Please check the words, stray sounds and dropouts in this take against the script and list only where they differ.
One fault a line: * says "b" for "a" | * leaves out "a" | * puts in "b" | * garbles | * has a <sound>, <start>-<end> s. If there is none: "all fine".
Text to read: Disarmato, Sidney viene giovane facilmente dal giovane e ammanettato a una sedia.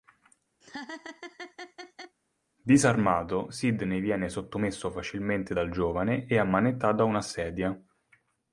* has a laugh, 0.6-2.2 s
* says "sottomesso" for "giovane"